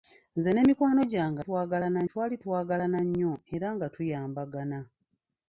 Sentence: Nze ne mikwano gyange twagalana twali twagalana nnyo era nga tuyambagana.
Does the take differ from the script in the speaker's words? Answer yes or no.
no